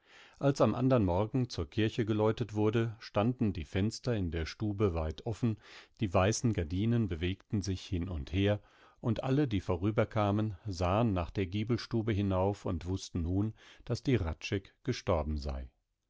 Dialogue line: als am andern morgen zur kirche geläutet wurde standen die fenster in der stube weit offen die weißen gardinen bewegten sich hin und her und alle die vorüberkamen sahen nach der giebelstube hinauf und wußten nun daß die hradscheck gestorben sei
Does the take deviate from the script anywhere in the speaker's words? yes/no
no